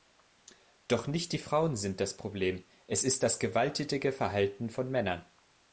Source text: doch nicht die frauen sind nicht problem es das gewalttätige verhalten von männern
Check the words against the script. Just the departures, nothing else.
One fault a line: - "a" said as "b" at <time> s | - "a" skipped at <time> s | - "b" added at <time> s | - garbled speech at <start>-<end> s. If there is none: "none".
- "nicht" said as "das" at 2.0 s
- "ist" added at 3.0 s